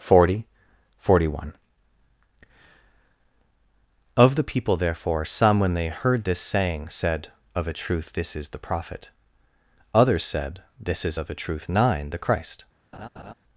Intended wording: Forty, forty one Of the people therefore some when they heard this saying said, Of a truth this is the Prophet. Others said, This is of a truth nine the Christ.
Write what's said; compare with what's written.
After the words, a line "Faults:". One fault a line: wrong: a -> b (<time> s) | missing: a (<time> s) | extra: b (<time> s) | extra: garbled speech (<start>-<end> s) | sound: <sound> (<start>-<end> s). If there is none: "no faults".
Forty, forty one Of the people therefore some when they heard this saying said, Of a truth this is the Prophet. Others said, This is of a truth nine the Christ.
Faults:
sound: laugh (12.9-13.3 s)